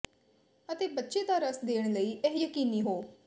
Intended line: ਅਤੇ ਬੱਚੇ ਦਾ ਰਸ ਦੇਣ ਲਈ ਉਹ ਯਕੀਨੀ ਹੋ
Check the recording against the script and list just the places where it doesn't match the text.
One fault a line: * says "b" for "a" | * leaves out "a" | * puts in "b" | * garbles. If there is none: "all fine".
* says "ਇਹ" for "ਉਹ"